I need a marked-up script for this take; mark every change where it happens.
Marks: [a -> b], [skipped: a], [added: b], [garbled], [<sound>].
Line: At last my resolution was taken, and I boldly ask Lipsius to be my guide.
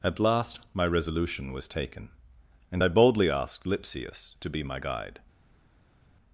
At last my resolution was taken, and I boldly [ask -> asked] Lipsius to be my guide.